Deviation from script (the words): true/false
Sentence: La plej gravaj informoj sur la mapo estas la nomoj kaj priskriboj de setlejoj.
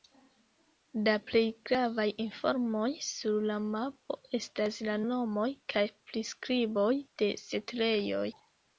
false